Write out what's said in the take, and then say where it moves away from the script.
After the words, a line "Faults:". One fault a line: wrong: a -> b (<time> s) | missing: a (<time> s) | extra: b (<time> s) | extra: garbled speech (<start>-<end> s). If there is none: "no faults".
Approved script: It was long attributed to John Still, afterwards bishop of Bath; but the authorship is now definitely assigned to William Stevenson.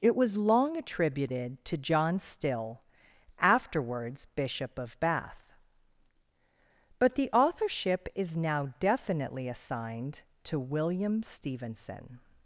It was long attributed to John Still, afterwards bishop of Bath; but the authorship is now definitely assigned to William Stevenson.
Faults:
no faults